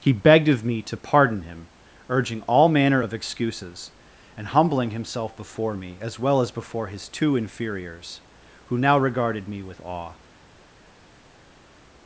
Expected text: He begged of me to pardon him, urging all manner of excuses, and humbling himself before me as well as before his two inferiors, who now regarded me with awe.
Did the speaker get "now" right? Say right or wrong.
right